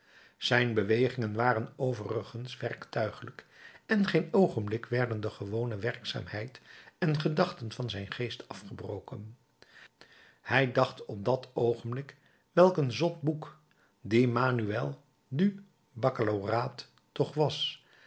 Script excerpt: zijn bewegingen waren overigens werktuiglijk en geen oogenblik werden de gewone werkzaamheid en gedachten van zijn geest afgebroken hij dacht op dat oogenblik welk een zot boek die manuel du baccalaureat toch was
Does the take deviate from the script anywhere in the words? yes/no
no